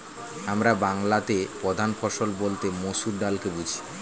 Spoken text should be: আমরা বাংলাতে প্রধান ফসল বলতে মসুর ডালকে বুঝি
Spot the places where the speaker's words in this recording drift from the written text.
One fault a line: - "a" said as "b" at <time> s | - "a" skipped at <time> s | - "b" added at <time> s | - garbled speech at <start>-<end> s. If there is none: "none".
none